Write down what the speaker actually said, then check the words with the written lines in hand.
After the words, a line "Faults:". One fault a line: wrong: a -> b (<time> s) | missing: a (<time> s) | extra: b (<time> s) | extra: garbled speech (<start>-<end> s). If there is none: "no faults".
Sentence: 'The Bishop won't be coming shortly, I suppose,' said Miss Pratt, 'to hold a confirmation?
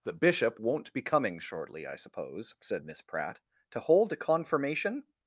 'The Bishop won't be coming shortly, I suppose,' said Miss Pratt, 'to hold a confirmation?
Faults:
no faults